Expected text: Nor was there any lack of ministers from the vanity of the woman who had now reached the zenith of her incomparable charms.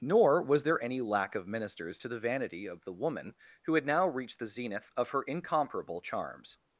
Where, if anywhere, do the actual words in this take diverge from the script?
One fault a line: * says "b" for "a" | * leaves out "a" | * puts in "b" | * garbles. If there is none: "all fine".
* says "to" for "from"